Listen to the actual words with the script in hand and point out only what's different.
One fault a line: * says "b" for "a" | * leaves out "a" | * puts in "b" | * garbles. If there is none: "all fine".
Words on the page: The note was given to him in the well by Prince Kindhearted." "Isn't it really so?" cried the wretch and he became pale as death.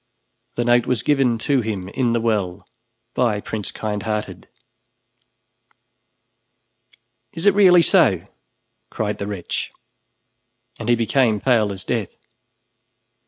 * says "Is" for "Isn't"